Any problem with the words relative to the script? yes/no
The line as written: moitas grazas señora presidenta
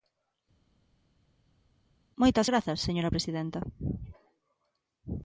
no